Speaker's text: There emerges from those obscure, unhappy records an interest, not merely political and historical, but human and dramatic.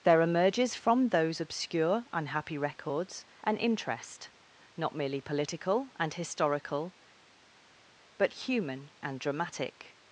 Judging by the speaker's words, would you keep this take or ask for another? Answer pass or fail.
pass